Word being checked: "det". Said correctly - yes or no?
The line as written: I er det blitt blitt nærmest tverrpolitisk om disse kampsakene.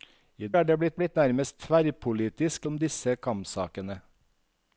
yes